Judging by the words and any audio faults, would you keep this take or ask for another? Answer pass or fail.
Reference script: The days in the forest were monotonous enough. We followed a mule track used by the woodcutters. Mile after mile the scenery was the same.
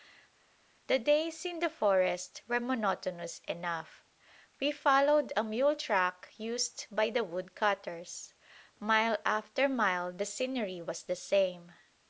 pass